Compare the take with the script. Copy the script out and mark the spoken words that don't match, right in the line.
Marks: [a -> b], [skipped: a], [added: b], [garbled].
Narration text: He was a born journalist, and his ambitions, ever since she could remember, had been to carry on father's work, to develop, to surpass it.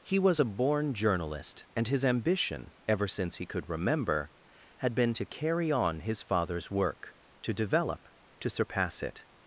He was a born journalist, and his [ambitions, -> ambition] ever since [she -> he] could remember, had been to carry on [added: his] father's work, to develop, to surpass it.